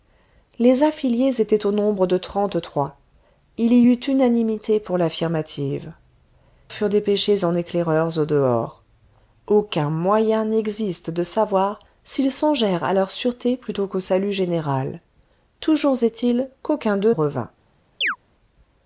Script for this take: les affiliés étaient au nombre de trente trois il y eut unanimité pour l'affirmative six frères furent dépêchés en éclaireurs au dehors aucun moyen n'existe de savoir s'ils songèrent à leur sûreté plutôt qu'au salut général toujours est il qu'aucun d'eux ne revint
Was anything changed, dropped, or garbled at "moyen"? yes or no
no